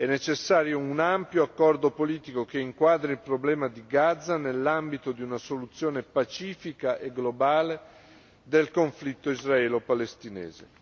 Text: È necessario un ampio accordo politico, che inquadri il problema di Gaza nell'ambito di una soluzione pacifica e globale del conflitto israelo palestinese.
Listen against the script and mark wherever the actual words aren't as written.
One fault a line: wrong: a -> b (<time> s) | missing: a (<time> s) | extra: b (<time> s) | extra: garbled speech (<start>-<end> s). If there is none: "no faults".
no faults